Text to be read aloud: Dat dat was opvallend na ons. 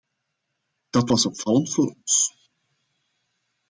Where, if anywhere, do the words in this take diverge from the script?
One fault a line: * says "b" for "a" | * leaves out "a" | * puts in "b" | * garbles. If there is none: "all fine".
* leaves out "dat"
* says "voor" for "na"